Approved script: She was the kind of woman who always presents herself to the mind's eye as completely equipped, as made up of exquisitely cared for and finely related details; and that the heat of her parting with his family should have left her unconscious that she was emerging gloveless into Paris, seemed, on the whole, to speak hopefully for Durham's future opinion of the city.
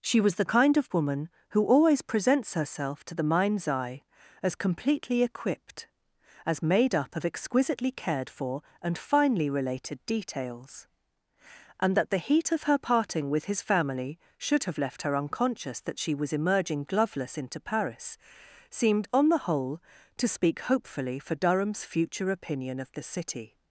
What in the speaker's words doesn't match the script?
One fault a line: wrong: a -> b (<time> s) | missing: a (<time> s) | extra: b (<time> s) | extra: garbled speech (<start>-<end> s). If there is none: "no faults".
no faults